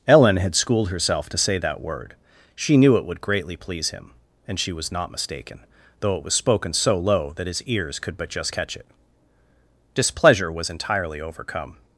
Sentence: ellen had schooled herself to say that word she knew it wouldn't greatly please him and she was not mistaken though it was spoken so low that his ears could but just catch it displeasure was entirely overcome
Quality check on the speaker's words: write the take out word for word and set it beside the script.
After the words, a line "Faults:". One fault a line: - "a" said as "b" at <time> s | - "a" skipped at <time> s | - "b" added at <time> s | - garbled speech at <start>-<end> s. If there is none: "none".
ellen had schooled herself to say that word she knew it would greatly please him and she was not mistaken though it was spoken so low that his ears could but just catch it displeasure was entirely overcome
Faults:
- "wouldn't" said as "would" at 3.0 s